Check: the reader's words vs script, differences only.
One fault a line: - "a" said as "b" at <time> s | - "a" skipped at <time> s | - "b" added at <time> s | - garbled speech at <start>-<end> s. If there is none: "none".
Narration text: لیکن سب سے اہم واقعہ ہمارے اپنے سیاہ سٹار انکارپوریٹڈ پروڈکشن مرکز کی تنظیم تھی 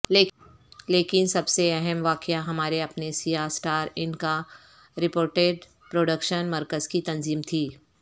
none